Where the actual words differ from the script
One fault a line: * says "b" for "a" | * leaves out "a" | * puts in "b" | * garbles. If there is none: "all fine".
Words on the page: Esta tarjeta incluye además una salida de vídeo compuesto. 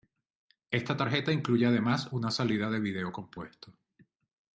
all fine